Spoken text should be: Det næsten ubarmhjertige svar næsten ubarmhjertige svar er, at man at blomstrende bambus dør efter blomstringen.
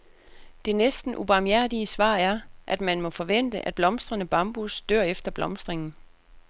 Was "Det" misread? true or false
false